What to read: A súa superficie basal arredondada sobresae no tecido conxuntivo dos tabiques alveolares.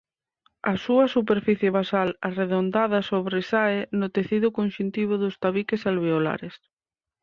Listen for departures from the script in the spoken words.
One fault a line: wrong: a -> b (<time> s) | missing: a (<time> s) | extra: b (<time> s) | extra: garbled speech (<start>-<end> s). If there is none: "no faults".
no faults